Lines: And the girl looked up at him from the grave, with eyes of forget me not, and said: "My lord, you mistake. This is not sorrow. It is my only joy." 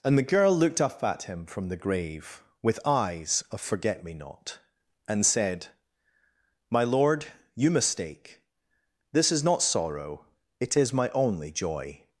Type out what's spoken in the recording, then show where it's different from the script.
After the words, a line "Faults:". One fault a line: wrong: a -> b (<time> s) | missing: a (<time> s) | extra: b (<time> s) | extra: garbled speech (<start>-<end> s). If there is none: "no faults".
And the girl looked up at him from the grave, with eyes of forget me not, and said: "My lord, you mistake. This is not sorrow. It is my only joy."
Faults:
no faults